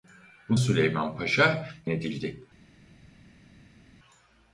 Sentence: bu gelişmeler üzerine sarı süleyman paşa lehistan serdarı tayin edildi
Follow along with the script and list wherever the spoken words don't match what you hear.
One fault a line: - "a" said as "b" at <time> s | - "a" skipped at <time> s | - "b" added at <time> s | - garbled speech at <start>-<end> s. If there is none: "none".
- "gelişmeler üzerine sarı" skipped at 0.6 s
- "lehistan serdarı tayin" skipped at 1.7 s